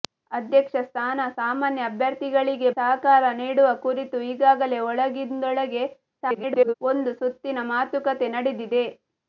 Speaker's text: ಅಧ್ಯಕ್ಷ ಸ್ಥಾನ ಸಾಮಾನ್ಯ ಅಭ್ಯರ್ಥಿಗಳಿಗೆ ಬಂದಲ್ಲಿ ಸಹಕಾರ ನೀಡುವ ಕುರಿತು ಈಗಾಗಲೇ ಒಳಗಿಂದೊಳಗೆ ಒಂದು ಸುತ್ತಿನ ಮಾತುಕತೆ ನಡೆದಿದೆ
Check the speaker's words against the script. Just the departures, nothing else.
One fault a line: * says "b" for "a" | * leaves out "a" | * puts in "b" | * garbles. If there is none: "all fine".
* leaves out "ಬಂದಲ್ಲಿ"
* garbles